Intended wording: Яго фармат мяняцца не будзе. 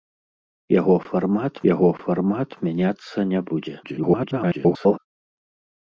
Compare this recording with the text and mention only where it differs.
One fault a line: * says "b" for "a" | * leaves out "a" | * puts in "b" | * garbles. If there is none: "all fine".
* puts in "яго фармат"
* garbles